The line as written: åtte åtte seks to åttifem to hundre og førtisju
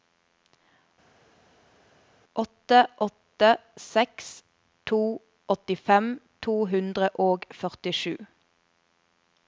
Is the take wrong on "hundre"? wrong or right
right